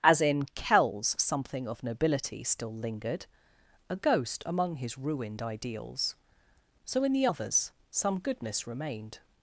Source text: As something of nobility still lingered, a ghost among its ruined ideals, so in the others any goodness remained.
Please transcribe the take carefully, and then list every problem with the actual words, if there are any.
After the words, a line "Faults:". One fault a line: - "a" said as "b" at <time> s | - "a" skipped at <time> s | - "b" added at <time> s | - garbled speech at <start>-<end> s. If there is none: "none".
As in Kells something of nobility still lingered, a ghost among his ruined ideals, so in the others some goodness remained.
Faults:
- "in Kells" added at 0.2 s
- "its" said as "his" at 4.8 s
- "any" said as "some" at 7.9 s